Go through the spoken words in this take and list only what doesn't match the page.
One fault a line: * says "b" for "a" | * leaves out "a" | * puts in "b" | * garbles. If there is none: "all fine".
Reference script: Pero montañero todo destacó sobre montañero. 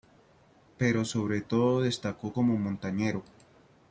* says "sobre" for "montañero"
* says "como" for "sobre"